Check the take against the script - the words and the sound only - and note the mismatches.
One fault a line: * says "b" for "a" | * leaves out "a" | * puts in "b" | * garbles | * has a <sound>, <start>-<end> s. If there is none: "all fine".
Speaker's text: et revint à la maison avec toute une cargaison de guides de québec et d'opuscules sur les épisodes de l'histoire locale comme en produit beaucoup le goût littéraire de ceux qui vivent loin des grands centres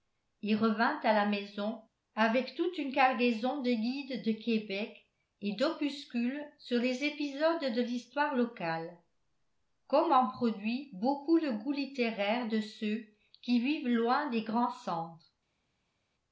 all fine